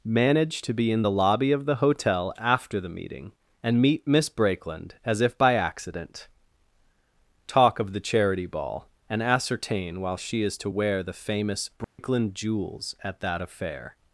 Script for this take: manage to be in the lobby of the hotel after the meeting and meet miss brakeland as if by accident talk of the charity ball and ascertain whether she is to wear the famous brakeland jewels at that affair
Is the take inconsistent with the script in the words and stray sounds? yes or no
yes